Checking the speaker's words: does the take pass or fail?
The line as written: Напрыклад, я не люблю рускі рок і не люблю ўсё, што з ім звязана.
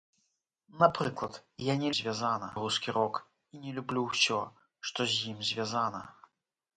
fail